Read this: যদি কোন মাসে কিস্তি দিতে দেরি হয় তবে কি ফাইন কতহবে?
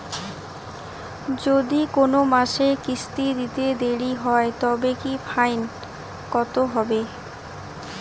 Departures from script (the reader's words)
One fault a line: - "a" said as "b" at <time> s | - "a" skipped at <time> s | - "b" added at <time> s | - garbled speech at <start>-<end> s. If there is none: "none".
none